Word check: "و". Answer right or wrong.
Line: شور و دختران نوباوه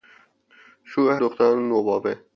right